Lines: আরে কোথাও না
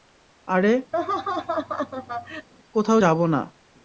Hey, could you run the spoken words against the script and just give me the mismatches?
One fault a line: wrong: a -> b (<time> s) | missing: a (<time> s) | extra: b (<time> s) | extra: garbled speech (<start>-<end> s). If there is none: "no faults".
extra: যাবো (3.0 s)